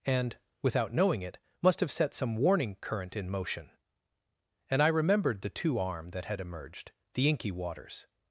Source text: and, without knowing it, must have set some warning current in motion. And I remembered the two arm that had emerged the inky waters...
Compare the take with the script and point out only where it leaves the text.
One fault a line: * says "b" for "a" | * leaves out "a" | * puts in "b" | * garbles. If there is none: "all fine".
all fine